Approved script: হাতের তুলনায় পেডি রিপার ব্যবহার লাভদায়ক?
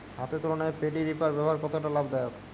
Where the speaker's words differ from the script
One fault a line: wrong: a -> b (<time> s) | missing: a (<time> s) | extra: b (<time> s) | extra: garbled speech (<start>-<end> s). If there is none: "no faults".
extra: কতটা (1.6 s)